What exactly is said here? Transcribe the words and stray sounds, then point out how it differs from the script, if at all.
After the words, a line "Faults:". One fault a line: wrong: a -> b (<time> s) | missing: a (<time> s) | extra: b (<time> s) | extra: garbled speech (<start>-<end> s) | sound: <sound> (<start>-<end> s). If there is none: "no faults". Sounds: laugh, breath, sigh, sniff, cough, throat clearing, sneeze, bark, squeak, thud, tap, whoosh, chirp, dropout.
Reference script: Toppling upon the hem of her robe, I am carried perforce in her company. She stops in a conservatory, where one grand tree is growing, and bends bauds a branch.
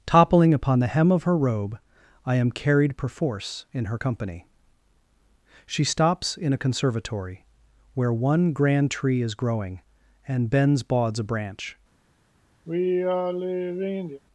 Toppling upon the hem of her robe, I am carried perforce in her company. She stops in a conservatory, where one grand tree is growing, and bends bauds a branch.
Faults:
sound: sigh (12.7-14.2 s)